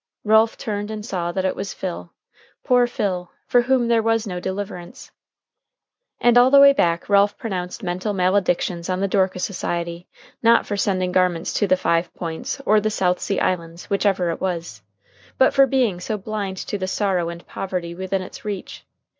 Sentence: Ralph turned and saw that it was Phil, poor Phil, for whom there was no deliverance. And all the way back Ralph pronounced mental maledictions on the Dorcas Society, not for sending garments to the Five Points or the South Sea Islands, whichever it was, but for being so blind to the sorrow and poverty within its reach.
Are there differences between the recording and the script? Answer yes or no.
no